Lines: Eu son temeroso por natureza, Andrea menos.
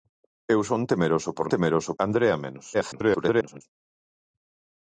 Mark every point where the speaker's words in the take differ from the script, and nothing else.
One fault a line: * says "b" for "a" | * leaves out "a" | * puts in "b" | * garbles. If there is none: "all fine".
* says "temeroso" for "natureza"
* garbles